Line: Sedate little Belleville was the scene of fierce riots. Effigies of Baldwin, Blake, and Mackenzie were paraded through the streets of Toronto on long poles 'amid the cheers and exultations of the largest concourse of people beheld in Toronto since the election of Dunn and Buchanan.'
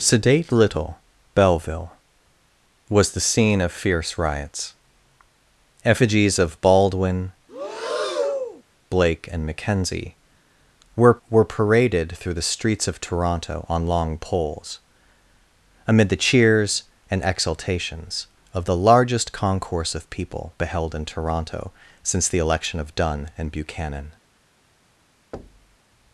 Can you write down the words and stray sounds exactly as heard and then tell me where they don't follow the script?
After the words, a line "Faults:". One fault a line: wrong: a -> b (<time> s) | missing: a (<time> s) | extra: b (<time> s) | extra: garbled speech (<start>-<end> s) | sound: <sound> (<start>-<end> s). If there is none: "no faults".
Sedate little Belleville was the scene of fierce riots. Effigies of Baldwin, Blake, and Mackenzie were were paraded through the streets of Toronto on long poles 'amid the cheers and exultations of the largest concourse of people beheld in Toronto since the election of Dunn and Buchanan.'
Faults:
sound: breath (7.5-8.6 s)
extra: were (11.3 s)
sound: thud (25.3-25.8 s)